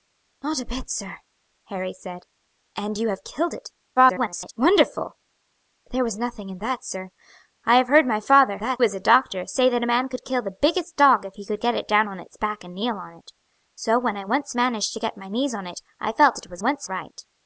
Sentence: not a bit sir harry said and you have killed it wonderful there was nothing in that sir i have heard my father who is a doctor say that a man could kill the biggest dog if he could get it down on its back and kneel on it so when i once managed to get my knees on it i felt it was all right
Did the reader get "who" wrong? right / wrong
wrong